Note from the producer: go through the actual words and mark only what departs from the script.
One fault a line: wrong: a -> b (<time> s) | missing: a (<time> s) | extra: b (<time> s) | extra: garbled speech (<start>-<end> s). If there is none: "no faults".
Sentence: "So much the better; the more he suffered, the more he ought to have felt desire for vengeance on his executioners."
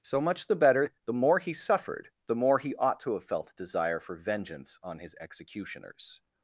no faults